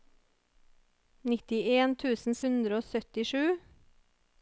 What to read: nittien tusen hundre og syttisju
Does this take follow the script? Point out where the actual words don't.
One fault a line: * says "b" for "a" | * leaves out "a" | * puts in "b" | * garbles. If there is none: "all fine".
all fine